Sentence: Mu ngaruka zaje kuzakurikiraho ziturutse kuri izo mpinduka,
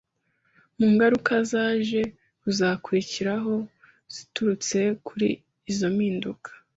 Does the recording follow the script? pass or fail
pass